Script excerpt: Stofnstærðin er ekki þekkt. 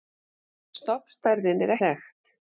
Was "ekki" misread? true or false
true